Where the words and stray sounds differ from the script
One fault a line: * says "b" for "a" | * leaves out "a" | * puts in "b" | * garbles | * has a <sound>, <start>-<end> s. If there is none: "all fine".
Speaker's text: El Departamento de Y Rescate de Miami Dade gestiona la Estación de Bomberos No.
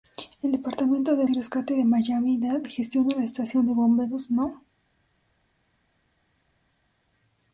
all fine